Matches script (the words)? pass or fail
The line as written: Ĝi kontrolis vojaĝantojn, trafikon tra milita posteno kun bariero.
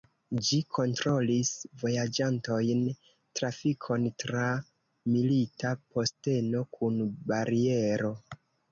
pass